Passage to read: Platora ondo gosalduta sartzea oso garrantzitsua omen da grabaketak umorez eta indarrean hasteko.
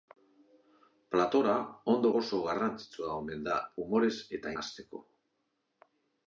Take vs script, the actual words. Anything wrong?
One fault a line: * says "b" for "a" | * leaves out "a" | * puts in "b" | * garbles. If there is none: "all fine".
* leaves out "gosalduta sartzea"
* leaves out "grabaketak"
* leaves out "indarrean"